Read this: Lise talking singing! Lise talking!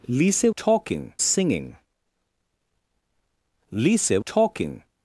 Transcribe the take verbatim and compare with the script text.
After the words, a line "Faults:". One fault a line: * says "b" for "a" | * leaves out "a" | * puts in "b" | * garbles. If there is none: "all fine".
Lise talking singing! Lise talking!
Faults:
all fine